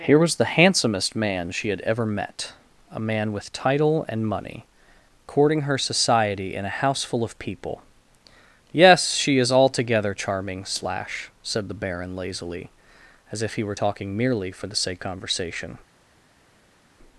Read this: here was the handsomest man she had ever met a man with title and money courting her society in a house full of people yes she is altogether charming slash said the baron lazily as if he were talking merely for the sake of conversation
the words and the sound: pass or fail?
fail